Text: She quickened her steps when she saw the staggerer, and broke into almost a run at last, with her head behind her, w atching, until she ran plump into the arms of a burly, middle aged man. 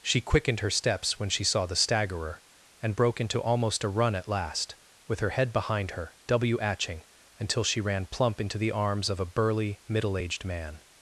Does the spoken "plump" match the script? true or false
true